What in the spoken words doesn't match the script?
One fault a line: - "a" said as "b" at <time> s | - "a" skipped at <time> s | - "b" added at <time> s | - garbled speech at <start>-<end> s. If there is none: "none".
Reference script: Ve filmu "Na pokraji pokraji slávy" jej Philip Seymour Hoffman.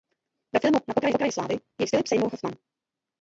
none